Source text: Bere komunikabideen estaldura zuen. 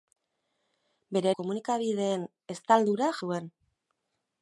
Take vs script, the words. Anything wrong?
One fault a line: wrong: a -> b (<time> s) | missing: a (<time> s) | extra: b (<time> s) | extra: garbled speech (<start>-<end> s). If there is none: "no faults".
no faults